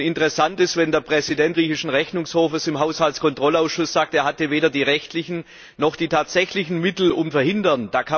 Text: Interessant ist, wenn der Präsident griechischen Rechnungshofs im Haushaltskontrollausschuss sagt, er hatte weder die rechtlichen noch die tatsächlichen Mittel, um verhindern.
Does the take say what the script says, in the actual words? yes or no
yes